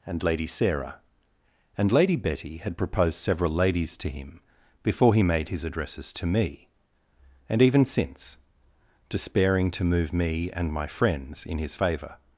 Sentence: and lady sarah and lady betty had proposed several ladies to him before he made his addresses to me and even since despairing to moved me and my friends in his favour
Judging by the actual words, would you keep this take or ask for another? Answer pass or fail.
fail